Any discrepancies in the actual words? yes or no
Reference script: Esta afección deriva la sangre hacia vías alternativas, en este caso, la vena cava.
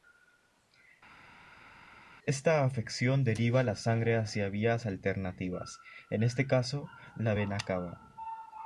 no